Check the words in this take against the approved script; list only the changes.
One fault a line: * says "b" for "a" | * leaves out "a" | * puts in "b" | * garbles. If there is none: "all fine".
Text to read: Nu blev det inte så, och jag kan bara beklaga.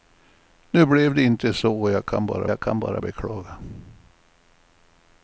* puts in "jag kan bara"